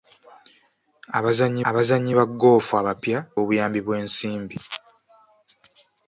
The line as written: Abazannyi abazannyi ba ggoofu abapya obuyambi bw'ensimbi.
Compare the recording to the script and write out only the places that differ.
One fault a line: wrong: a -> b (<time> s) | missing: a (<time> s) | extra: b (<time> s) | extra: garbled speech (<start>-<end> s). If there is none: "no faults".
no faults